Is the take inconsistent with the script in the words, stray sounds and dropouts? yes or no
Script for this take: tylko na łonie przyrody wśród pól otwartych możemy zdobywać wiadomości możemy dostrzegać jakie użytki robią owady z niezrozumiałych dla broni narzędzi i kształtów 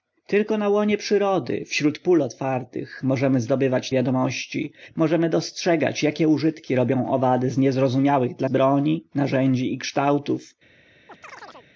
yes